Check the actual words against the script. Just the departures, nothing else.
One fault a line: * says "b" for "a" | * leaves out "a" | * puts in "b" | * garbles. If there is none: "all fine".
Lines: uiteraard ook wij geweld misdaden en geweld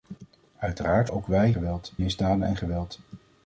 all fine